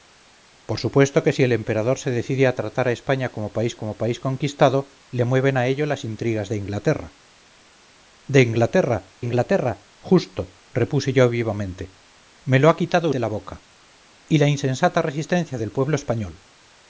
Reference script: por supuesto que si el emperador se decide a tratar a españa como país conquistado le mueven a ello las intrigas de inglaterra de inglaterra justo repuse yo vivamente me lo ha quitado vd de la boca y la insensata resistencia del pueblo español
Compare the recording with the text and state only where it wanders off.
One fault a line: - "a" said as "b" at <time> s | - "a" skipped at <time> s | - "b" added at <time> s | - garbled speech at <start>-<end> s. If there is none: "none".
- "como país" added at 3.8 s
- "inglaterra" added at 9.2 s
- "vd" skipped at 13.1 s